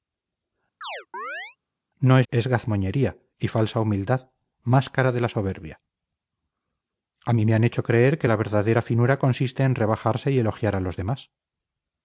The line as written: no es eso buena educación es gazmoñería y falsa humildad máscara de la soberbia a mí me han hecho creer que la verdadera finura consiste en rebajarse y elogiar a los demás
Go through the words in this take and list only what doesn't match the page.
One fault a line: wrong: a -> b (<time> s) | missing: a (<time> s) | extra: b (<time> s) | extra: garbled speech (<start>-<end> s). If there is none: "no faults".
missing: eso buena educación (2.3 s)